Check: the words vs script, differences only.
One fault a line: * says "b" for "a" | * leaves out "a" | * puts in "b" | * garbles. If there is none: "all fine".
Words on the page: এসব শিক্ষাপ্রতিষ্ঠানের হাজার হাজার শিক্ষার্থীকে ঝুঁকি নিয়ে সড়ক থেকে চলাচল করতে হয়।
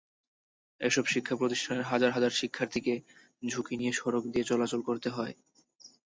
* says "দিয়ে" for "থেকে"